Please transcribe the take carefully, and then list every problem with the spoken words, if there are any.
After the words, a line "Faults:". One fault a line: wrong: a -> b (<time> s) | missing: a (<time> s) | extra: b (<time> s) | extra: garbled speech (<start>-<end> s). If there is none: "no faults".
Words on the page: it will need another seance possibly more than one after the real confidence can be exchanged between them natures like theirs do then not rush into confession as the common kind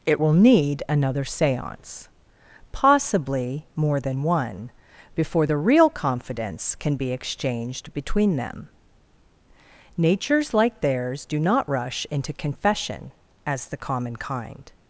it will need another seance possibly more than one before the real confidence can be exchanged between them natures like theirs do not rush into confession as the common kind
Faults:
wrong: after -> before (5.1 s)
missing: then (11.4 s)